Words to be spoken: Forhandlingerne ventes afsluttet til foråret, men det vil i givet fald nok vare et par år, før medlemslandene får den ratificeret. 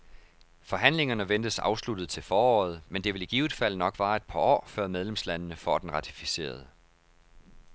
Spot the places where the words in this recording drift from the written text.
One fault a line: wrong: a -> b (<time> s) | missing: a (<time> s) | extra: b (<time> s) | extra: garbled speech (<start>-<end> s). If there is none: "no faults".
no faults